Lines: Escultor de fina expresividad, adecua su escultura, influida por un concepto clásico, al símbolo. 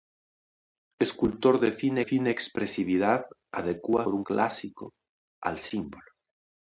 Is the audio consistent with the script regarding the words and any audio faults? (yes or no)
no